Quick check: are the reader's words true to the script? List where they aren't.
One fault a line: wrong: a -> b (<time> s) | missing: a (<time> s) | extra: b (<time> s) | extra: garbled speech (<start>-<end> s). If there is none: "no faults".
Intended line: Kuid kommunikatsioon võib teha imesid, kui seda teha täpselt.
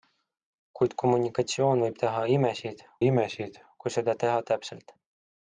extra: imesid (3.1 s)